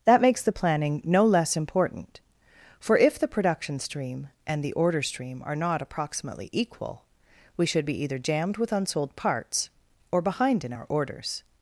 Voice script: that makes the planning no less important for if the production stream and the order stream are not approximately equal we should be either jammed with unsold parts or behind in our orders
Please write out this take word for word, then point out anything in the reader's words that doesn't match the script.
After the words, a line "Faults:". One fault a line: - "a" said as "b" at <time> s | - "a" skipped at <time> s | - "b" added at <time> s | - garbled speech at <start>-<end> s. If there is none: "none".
that makes the planning no less important for if the production stream and the order stream are not approximately equal we should be either jammed with unsold parts or behind in our orders
Faults:
none